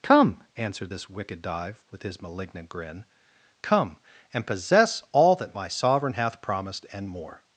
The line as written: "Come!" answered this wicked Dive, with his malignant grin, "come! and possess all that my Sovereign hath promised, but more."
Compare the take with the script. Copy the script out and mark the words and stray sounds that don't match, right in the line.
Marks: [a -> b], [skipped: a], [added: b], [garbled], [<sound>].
"Come!" answered this wicked Dive, with his malignant grin, "come! and possess all that my Sovereign hath promised, [but -> and] more."